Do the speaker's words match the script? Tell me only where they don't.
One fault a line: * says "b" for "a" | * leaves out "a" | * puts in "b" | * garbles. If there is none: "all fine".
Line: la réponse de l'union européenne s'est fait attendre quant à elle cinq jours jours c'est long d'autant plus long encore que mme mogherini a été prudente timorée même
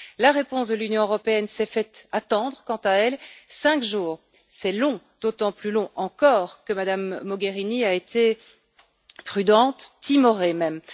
* leaves out "jours"